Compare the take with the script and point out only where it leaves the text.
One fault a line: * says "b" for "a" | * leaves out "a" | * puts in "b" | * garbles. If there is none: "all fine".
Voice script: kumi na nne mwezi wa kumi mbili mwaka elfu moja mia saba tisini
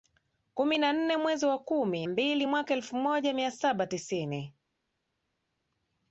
all fine